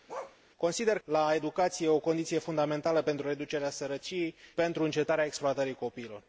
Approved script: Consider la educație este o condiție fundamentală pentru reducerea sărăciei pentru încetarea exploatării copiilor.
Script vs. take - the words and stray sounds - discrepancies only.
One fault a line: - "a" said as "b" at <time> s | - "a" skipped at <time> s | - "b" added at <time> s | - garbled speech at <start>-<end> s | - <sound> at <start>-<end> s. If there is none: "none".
- bark at 0.1-0.4 s